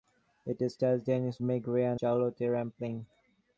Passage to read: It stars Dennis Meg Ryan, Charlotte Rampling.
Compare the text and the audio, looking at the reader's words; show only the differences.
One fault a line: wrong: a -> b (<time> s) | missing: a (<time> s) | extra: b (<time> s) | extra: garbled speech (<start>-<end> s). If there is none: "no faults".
no faults